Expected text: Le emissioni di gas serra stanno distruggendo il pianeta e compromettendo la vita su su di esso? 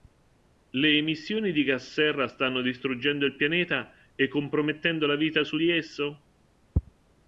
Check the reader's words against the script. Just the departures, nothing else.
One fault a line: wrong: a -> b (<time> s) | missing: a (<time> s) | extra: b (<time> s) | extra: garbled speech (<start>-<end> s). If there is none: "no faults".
missing: su (5.6 s)